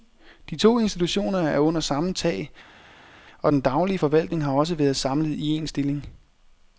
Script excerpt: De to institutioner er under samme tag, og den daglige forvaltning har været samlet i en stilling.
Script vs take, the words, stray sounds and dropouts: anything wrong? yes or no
yes